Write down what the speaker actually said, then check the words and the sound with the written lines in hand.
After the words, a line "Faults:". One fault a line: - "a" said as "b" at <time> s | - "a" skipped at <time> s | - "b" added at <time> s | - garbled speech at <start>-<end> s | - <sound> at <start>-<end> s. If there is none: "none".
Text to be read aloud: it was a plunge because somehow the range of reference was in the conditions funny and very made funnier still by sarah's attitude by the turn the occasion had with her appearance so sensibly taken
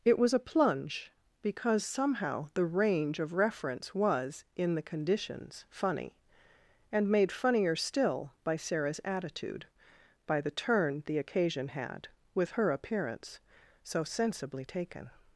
it was a plunge because somehow the range of reference was in the conditions funny and made funnier still by sarah's attitude by the turn the occasion had with her appearance so sensibly taken
Faults:
- "very" skipped at 7.1 s